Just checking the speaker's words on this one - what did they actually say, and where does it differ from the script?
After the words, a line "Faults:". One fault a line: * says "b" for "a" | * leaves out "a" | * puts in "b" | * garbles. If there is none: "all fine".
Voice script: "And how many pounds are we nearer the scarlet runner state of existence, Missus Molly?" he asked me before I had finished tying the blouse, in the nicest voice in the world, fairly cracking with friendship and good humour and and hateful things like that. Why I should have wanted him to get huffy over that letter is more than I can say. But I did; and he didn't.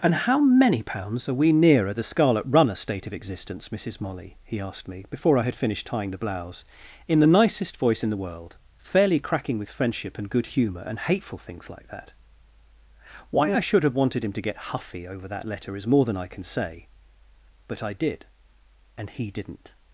"And how many pounds are we nearer the scarlet runner state of existence, Missus Molly?" he asked me before I had finished tying the blouse, in the nicest voice in the world, fairly cracking with friendship and good humour and hateful things like that. Why I should have wanted him to get huffy over that letter is more than I can say. But I did; and he didn't.
Faults:
* leaves out "and"